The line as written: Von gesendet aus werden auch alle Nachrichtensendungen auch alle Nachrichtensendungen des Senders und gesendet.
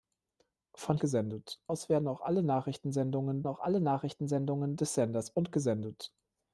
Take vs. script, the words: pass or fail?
pass